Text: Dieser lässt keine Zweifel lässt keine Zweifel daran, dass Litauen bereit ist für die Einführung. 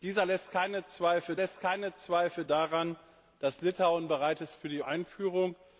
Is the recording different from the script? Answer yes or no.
no